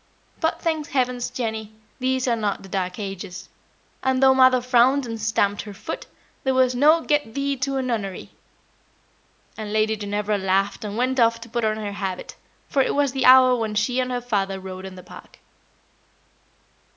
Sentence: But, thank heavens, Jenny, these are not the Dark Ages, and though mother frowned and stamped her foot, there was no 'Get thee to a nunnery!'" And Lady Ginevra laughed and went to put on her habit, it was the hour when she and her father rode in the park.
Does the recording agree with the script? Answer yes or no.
no